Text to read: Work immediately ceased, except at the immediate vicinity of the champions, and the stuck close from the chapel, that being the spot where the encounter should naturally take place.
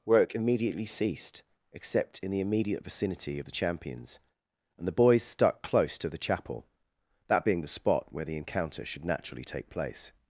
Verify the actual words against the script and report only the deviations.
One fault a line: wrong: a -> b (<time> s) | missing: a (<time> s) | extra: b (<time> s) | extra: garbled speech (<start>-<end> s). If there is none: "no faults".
wrong: at -> in (2.2 s)
extra: boys (4.9 s)
wrong: from -> to (6.0 s)